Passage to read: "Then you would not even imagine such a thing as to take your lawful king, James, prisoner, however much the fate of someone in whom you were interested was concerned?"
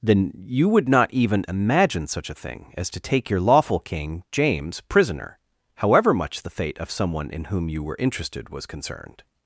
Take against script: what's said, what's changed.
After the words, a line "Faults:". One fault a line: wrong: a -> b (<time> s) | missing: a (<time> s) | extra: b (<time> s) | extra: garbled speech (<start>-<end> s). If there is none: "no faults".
"Then you would not even imagine such a thing as to take your lawful king, James, prisoner, however much the fate of someone in whom you were interested was concerned?"
Faults:
no faults